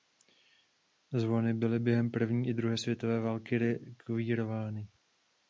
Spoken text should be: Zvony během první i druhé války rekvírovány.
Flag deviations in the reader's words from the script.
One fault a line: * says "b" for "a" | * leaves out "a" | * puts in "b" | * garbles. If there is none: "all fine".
* puts in "byly"
* puts in "světové"